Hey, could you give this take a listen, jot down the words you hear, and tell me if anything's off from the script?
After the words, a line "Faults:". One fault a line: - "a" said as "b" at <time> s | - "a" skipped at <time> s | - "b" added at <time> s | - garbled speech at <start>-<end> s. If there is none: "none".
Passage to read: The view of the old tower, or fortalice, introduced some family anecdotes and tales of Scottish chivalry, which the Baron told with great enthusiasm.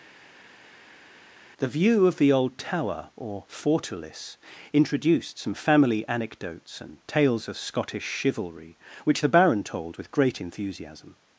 The view of the old tower, or fortalice, introduced some family anecdotes and tales of Scottish chivalry, which the Baron told with great enthusiasm.
Faults:
none